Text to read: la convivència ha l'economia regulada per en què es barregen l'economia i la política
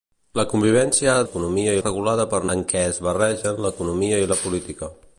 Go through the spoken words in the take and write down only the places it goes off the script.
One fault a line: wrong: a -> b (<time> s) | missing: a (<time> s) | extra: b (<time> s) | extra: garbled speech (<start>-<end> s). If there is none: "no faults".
no faults